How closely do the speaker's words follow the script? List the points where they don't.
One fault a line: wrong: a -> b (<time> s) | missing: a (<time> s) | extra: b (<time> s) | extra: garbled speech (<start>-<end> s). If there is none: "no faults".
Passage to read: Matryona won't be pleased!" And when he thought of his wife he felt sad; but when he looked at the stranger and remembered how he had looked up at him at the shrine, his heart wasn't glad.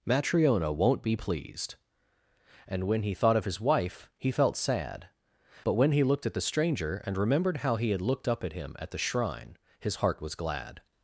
wrong: wasn't -> was (10.2 s)